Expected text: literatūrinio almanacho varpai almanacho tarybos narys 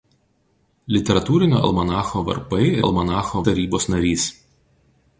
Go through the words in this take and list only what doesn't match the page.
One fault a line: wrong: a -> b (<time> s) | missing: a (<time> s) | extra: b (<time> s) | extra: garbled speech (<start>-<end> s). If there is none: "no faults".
no faults